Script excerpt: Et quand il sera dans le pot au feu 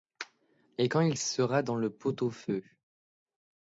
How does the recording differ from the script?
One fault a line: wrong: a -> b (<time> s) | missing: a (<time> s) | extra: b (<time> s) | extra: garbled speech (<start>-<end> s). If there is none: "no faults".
no faults